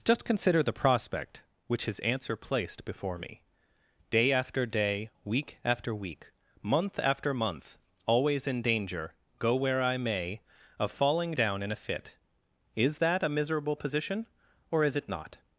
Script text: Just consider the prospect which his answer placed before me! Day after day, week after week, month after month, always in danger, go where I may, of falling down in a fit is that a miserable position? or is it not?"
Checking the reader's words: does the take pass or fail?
pass